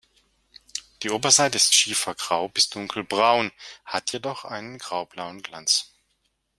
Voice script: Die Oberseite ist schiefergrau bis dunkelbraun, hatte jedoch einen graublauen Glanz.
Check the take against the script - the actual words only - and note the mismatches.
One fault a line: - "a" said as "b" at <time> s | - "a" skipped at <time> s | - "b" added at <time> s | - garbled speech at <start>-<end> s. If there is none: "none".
- "hatte" said as "hat" at 3.8 s